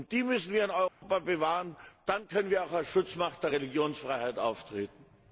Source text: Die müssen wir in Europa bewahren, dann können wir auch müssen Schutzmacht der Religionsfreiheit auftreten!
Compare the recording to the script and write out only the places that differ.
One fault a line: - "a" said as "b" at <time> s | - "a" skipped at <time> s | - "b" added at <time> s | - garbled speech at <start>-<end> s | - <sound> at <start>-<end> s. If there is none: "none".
- dropout at 0.9-1.0 s
- "müssen" said as "als" at 2.7 s